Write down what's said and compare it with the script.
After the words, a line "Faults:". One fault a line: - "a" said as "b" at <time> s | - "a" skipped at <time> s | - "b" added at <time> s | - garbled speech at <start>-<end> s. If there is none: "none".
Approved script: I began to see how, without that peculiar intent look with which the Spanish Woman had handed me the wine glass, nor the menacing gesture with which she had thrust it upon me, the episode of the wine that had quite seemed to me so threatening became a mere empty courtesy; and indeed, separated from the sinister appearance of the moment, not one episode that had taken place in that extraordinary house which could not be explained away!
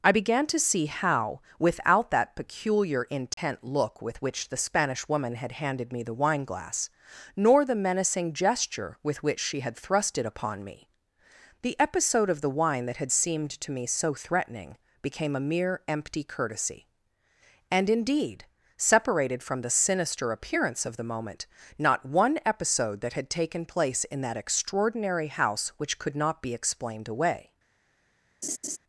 I began to see how, without that peculiar intent look with which the Spanish Woman had handed me the wine glass, nor the menacing gesture with which she had thrust it upon me, the episode of the wine that had seemed to me so threatening became a mere empty courtesy; and indeed, separated from the sinister appearance of the moment, not one episode that had taken place in that extraordinary house which could not be explained away!
Faults:
- "quite" skipped at 13.1 s